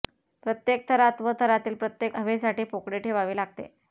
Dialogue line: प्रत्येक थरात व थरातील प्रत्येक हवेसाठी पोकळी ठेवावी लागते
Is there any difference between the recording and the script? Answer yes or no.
no